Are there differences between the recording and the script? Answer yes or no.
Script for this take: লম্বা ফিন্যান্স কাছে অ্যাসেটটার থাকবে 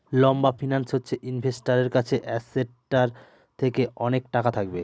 yes